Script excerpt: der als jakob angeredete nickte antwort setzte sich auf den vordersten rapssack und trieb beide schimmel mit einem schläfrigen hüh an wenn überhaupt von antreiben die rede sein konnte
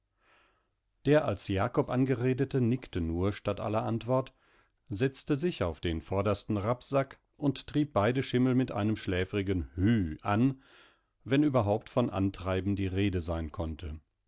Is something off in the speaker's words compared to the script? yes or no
yes